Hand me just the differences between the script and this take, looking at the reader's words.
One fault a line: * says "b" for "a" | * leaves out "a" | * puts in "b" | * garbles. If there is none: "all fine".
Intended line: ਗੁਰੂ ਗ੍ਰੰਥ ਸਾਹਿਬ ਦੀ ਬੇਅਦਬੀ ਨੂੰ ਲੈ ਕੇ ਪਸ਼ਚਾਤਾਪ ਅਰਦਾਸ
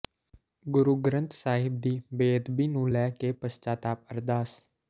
all fine